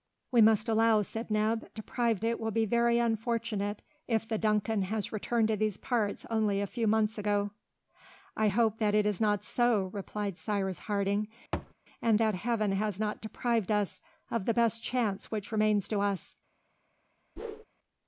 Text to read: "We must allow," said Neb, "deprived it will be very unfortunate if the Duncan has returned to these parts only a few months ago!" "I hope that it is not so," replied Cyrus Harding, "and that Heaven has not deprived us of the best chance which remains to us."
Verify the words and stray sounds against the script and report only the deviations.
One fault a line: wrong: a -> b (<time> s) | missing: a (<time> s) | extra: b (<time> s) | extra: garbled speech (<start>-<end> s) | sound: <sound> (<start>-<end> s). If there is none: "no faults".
sound: thud (11.5-11.7 s)
sound: whoosh (17.4-17.6 s)